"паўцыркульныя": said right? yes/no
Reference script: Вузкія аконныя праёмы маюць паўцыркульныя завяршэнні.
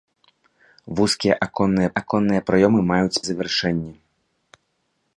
no